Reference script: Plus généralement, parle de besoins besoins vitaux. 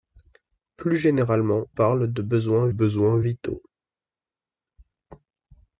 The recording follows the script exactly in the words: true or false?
true